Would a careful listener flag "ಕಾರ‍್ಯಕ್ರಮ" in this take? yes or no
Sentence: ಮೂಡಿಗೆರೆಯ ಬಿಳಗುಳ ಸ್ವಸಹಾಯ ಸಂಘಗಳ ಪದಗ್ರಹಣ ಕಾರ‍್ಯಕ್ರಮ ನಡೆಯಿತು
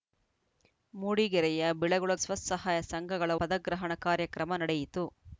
no